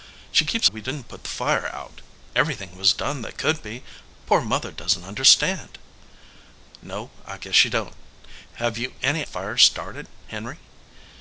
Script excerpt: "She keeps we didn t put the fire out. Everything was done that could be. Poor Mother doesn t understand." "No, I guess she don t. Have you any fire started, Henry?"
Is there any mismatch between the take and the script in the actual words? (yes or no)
no